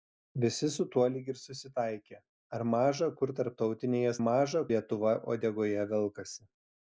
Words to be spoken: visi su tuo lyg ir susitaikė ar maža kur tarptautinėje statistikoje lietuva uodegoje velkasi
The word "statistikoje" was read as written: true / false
false